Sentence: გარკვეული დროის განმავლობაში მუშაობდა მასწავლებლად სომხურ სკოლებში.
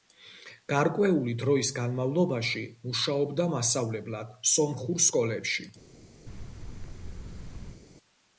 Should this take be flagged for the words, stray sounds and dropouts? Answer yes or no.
yes